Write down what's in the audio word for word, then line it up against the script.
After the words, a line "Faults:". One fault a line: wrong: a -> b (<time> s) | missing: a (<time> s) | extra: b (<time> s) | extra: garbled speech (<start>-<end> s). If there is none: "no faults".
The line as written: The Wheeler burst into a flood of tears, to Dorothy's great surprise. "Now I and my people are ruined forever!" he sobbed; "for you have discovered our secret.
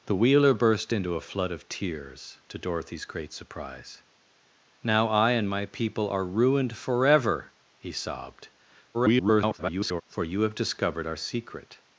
The Wheeler burst into a flood of tears, to Dorothy's great surprise. "Now I and my people are ruined forever!" he sobbed; [garbled] "for you have discovered our secret.
Faults:
extra: garbled speech (8.9-10.0 s)